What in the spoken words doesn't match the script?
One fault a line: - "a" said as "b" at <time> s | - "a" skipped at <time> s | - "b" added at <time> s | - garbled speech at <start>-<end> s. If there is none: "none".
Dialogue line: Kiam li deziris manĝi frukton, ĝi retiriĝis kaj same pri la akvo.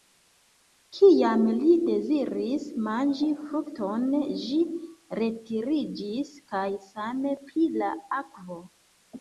none